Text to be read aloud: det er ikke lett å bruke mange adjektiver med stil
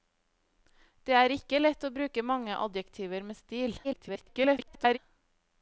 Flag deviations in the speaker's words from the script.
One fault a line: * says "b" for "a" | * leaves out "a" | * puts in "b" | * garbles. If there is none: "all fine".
* garbles